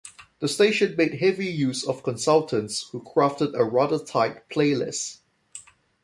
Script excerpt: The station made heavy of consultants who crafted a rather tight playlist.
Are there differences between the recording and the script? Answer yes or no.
yes